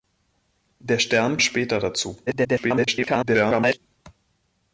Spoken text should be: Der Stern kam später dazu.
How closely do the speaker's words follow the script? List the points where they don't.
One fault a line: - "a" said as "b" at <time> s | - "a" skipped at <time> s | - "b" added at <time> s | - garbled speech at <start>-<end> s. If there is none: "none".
- "kam" skipped at 1.4 s
- garbled speech at 2.3-3.8 s